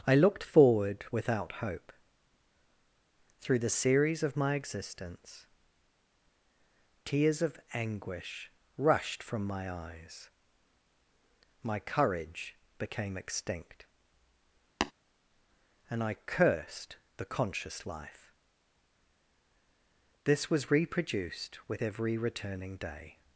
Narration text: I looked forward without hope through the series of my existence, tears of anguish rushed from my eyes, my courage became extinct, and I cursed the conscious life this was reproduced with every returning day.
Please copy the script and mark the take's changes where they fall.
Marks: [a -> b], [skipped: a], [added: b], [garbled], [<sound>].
I looked forward without hope through the series of my existence, tears of anguish rushed from my eyes, my courage became extinct, [tap] and I cursed the conscious life this was reproduced with every returning day.